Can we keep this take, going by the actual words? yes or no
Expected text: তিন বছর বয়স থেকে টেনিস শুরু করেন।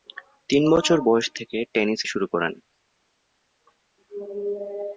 yes